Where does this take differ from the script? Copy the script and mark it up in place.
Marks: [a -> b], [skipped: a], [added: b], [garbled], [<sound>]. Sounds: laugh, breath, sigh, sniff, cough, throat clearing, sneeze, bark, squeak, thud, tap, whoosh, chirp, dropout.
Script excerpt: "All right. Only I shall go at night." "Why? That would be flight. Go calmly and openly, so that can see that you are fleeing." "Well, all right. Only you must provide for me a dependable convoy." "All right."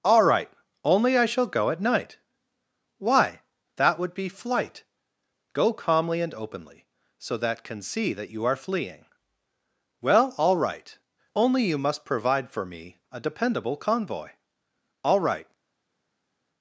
"All right. Only I shall go at night." "Why? That would be flight. Go calmly and openly, so that can see that you are fleeing." "Well, all right. Only you must provide for me a dependable convoy." "All right."